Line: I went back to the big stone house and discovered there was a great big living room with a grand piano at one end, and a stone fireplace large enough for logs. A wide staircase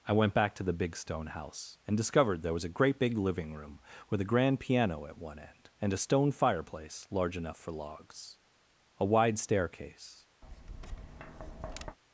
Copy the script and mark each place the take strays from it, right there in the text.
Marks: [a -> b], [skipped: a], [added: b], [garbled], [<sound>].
I went back to the big stone house and discovered there was a great big living room with a grand piano at one end, and a stone fireplace large enough for logs. A wide staircase [tap]